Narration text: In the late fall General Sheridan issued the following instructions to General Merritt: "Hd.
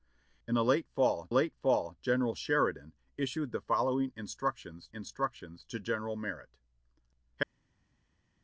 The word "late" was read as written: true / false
true